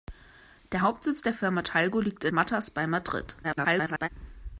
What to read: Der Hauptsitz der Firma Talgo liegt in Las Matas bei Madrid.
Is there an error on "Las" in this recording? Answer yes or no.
yes